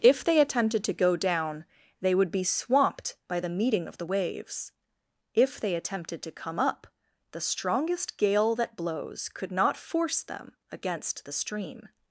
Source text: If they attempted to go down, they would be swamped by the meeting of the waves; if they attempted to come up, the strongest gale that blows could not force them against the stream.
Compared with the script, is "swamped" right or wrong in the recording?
right